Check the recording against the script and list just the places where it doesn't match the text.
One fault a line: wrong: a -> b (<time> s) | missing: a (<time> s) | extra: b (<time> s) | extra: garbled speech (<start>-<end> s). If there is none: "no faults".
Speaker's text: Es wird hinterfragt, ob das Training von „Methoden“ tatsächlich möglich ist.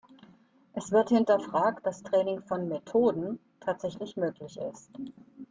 missing: ob (1.9 s)